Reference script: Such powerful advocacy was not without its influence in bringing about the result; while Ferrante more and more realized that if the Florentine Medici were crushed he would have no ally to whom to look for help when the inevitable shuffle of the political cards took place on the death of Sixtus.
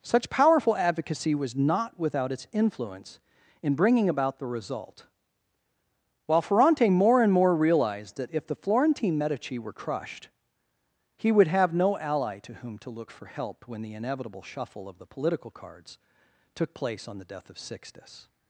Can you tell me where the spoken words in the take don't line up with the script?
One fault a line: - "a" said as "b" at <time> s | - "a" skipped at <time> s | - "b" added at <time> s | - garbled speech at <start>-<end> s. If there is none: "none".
none